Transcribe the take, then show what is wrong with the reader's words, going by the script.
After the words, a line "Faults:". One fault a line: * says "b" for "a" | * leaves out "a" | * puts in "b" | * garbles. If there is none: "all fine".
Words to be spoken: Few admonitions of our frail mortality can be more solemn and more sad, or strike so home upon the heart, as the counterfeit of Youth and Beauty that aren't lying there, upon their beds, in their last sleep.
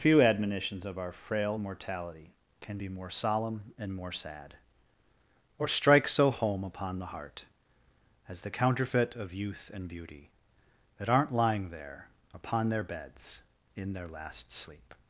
Few admonitions of our frail mortality can be more solemn and more sad, or strike so home upon the heart, as the counterfeit of Youth and Beauty that aren't lying there, upon their beds, in their last sleep.
Faults:
all fine